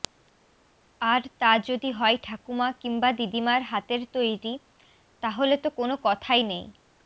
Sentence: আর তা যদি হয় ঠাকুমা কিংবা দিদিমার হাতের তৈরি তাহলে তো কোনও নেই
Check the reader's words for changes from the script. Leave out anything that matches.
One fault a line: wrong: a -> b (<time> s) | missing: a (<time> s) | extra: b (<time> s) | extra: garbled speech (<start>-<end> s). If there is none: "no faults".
extra: কথাই (6.0 s)